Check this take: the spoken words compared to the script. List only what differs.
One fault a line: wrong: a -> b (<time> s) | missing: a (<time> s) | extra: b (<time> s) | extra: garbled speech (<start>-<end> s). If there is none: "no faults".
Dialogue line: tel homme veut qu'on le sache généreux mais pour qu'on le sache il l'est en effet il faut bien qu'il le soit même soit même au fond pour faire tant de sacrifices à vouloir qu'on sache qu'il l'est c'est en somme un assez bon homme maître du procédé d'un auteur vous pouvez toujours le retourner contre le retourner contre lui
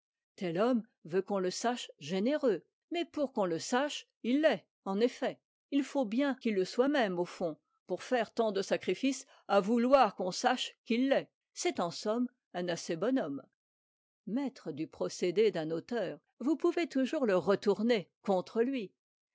missing: soit même (7.2 s)
missing: le retourner contre (18.6 s)